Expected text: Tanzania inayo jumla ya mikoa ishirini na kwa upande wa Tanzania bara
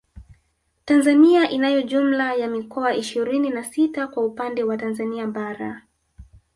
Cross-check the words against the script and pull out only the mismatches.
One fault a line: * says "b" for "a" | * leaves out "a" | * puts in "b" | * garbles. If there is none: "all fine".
* puts in "sita"